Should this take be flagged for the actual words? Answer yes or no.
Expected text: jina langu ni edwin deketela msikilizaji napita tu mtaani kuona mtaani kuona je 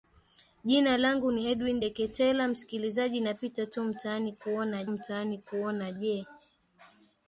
no